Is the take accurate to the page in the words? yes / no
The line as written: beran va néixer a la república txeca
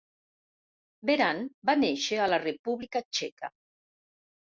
yes